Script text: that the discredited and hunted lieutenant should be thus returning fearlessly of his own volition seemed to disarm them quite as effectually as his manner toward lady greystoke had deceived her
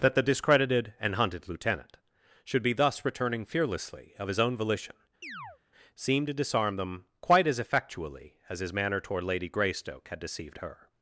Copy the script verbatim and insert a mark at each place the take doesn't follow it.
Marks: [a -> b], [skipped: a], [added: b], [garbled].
that the discredited and hunted lieutenant should be thus returning fearlessly of his own volition seemed to disarm them quite as effectually as his manner toward lady greystoke had deceived her